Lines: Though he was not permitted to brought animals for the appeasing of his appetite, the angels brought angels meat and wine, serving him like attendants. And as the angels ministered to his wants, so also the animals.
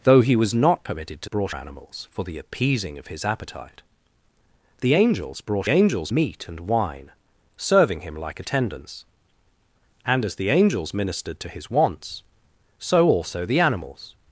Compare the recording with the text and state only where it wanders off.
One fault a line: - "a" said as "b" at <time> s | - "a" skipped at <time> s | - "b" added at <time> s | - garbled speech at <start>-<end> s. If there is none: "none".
none